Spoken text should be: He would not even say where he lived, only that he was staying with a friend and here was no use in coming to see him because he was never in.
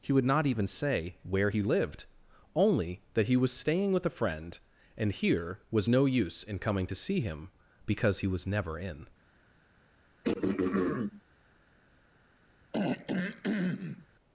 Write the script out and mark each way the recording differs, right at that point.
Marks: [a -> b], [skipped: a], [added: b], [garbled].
He would not even say where he lived, only that he was staying with a friend and here was no use in coming to see him because he was never in.